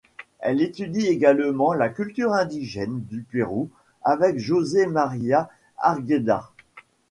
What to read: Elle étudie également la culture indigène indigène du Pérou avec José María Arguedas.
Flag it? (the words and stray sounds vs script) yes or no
yes